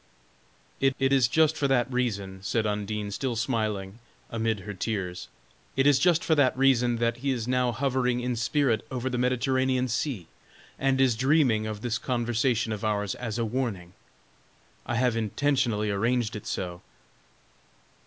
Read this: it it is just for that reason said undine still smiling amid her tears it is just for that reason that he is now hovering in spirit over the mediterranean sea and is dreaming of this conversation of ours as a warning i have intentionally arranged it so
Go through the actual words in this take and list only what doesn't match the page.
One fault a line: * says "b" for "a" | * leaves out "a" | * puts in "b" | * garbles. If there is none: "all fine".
all fine